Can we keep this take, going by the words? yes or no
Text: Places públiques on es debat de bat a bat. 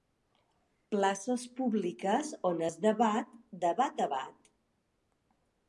yes